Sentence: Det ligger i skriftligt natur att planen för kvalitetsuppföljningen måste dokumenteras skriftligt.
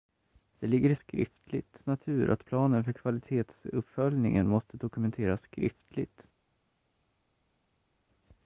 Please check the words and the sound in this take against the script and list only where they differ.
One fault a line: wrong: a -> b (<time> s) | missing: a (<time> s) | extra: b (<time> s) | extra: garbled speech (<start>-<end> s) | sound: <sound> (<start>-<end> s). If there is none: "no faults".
no faults